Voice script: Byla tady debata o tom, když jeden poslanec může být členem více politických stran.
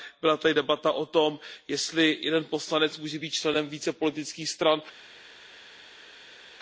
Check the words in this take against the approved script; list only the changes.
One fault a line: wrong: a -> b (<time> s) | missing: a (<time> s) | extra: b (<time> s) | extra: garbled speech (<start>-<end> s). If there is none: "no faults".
wrong: když -> jestli (1.7 s)